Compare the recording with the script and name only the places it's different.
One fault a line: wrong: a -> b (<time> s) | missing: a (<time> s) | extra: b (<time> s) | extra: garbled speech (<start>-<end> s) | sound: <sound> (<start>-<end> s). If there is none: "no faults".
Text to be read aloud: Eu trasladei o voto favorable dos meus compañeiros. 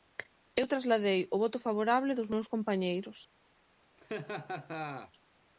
sound: laugh (4.0-5.1 s)